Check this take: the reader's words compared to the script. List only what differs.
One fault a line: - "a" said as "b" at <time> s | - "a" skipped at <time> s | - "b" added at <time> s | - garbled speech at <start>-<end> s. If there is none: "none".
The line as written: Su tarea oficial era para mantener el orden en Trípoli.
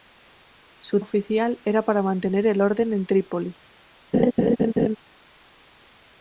- "tarea" skipped at 1.0 s